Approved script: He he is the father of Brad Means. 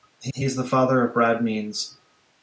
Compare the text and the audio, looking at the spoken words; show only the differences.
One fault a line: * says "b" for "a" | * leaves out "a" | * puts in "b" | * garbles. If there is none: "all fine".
all fine